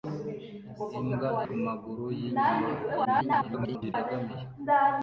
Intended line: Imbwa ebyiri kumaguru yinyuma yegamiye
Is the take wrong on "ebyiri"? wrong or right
wrong